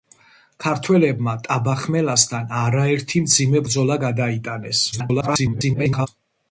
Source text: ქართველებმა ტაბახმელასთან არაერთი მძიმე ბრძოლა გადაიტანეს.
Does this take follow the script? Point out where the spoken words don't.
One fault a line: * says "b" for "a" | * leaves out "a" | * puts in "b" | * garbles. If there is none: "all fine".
* garbles